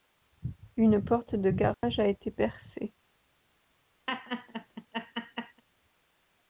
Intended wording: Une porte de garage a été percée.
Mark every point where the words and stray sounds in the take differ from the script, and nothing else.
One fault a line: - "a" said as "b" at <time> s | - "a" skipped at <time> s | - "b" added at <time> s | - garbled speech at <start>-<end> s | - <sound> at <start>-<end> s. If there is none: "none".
- dropout at 1.7-1.8 s
- laugh at 4.1-5.6 s